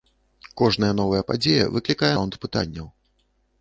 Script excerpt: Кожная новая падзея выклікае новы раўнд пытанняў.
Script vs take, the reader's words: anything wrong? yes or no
yes